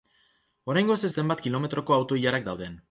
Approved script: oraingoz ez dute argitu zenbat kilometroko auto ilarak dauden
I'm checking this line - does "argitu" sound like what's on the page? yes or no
no